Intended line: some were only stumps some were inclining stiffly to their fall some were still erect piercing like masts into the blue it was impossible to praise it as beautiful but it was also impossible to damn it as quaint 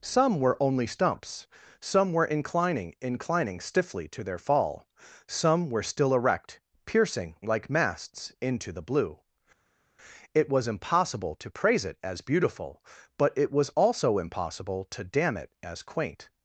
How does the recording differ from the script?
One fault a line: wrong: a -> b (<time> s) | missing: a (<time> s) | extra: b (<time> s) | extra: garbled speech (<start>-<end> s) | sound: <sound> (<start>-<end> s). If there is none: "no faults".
extra: inclining (3.0 s)